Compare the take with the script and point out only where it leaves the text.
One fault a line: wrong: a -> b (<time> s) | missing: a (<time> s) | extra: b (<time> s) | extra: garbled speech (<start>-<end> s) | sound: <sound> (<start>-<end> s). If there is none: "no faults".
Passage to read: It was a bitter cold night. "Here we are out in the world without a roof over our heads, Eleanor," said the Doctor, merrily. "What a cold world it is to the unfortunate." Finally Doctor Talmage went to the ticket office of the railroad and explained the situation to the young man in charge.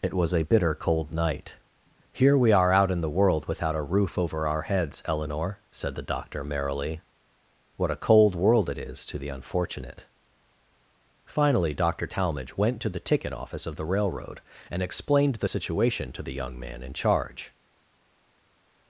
no faults